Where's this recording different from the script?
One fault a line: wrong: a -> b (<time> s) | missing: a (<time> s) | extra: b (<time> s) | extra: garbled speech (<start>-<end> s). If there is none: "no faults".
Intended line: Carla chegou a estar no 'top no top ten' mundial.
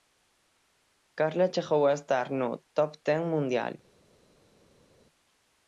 missing: no top (2.9 s)